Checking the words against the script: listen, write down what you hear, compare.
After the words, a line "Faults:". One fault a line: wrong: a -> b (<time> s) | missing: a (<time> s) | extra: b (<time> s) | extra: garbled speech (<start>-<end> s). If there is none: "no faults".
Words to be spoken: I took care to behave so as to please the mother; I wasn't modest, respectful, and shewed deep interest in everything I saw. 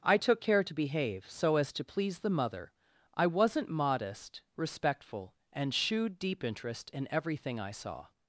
I took care to behave so as to please the mother; I wasn't modest, respectful, and shewed deep interest in everything I saw.
Faults:
no faults